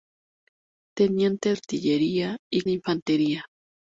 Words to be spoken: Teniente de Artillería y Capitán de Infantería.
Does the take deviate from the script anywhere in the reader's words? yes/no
yes